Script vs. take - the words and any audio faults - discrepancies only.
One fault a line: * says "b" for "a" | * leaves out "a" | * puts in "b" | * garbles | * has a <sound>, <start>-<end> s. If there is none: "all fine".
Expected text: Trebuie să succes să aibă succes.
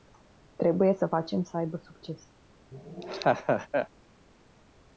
* says "facem" for "succes"
* has a laugh, 2.7-3.9 s